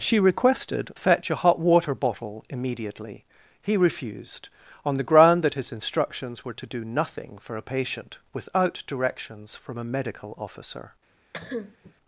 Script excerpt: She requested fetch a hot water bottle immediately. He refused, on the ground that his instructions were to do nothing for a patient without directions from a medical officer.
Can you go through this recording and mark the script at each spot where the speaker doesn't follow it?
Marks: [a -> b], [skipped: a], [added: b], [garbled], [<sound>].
She requested fetch a hot water bottle immediately. He refused, on the ground that his instructions were to do nothing for a patient without directions from a medical officer. [cough]